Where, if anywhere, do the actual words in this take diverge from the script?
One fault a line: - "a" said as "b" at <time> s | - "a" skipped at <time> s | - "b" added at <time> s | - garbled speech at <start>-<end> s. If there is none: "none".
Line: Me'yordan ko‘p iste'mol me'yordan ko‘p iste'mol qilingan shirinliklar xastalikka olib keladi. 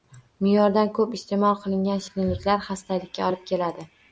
- "me'yordan ko‘p iste'mol" skipped at 1.6 s